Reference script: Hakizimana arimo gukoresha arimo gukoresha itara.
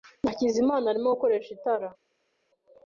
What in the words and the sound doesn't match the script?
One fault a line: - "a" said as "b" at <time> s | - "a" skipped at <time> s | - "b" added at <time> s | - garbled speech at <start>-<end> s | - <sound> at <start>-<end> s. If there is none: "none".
- "arimo gukoresha" skipped at 1.5 s